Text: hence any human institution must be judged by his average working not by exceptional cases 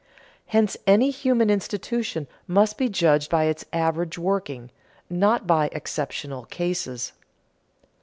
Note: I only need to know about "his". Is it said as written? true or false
false